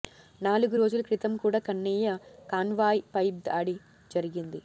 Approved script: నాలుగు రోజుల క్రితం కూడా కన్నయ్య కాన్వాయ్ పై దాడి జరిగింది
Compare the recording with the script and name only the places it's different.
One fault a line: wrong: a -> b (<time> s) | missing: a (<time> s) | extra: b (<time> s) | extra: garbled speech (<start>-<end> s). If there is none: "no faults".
no faults